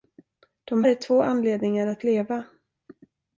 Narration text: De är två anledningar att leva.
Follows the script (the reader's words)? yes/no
yes